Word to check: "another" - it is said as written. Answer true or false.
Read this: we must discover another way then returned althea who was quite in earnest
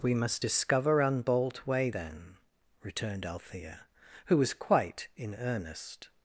false